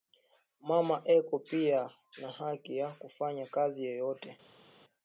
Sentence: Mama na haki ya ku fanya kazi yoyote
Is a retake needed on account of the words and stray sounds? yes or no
yes